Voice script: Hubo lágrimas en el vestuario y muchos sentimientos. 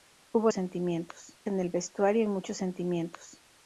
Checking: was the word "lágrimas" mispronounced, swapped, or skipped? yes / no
yes